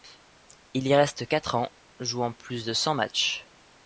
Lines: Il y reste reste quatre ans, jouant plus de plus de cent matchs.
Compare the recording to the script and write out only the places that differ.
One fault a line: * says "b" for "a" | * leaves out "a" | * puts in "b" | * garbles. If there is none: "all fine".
* leaves out "reste"
* leaves out "plus de"